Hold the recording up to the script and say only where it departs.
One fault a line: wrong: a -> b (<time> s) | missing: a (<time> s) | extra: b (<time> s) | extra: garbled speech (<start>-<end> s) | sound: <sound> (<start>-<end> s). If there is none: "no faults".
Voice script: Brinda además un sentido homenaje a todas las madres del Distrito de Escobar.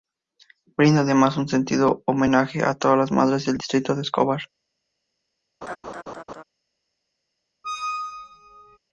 sound: laugh (5.6-6.4 s)
sound: squeak (7.6-8.8 s)